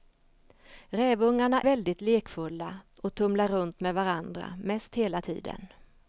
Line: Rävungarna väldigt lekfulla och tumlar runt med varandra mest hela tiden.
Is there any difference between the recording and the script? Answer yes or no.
no